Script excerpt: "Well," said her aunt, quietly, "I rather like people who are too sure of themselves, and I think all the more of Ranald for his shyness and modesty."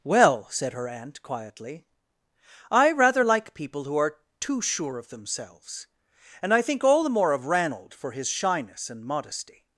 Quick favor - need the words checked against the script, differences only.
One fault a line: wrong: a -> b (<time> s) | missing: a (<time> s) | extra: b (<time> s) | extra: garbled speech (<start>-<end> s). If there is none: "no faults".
no faults